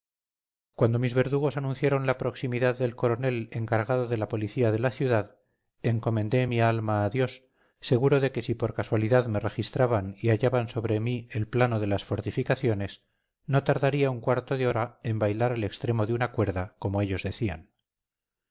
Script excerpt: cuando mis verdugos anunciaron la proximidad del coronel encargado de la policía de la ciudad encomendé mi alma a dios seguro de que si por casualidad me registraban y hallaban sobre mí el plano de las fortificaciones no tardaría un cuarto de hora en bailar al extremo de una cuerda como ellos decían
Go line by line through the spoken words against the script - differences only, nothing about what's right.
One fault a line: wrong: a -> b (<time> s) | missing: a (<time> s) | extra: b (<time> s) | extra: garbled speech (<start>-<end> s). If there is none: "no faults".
no faults